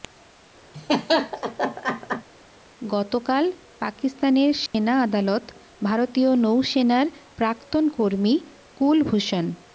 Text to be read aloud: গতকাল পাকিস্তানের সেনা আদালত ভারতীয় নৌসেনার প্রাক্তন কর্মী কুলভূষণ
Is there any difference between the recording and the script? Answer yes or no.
no